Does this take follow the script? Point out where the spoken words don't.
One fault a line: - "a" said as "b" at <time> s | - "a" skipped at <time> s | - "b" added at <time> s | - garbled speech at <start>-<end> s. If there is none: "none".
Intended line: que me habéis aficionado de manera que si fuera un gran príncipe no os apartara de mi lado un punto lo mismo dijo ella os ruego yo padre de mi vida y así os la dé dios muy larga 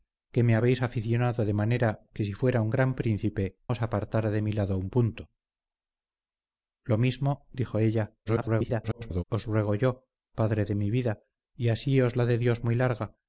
- "no" skipped at 3.6 s
- garbled speech at 8.3-9.2 s